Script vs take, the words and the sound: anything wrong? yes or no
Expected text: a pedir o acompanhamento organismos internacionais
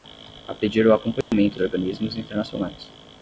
yes